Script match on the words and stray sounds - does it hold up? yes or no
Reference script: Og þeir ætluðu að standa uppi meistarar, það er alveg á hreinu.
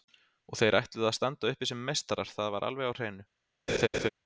no